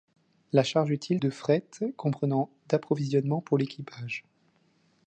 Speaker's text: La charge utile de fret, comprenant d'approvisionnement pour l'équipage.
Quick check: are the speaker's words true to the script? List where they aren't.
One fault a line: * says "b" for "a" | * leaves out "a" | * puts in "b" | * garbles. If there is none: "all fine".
all fine